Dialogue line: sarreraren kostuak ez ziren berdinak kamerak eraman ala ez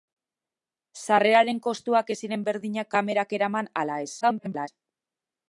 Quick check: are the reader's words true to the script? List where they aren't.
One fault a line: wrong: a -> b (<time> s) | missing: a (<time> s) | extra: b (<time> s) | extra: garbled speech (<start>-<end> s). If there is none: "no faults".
extra: garbled speech (4.2-4.7 s)